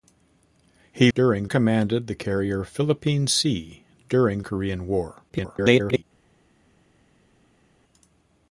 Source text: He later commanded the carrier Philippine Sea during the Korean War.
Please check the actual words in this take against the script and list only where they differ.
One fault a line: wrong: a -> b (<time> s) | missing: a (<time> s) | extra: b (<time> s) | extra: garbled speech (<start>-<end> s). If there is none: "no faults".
wrong: later -> during (1.1 s)
missing: the (4.4 s)
extra: garbled speech (5.3-6.0 s)